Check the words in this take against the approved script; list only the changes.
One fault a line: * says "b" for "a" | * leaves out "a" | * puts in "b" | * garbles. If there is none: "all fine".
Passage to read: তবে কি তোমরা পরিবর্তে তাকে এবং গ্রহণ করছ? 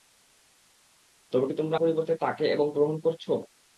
all fine